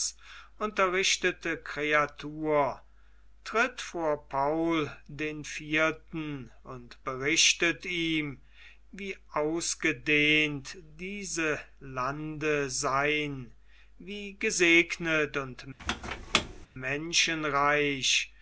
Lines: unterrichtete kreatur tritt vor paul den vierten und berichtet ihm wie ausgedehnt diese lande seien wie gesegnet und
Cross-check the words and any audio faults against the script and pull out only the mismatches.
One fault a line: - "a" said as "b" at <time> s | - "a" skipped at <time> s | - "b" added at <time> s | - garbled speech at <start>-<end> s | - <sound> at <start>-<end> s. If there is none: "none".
- squeak at 15.8-16.7 s